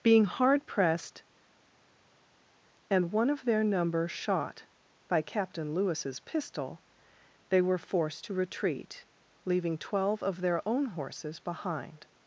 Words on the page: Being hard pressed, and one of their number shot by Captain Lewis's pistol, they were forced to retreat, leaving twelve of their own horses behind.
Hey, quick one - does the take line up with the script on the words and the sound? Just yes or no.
yes